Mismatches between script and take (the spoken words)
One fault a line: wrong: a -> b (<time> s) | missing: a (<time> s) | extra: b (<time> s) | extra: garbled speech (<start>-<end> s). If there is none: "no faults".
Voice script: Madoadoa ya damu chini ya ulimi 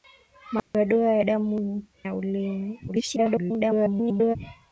missing: chini (1.8 s)
extra: garbled speech (2.9-4.4 s)